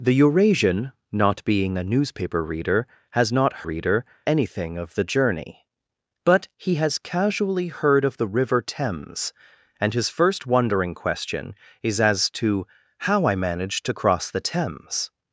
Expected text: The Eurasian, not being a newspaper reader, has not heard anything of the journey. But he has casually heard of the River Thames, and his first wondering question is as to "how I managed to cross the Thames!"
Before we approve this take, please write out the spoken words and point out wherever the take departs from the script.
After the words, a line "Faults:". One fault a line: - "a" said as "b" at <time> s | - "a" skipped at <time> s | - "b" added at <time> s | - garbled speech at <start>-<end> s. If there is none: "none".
The Eurasian, not being a newspaper reader, has not reader anything of the journey. But he has casually heard of the River Thames, and his first wondering question is as to "how I managed to cross the Thames!"
Faults:
- "heard" said as "reader" at 3.6 s